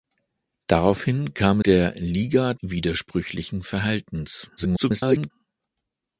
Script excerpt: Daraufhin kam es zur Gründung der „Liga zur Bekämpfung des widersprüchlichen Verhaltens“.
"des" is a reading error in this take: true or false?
true